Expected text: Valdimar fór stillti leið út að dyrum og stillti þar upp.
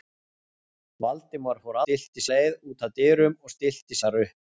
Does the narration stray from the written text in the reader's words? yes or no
no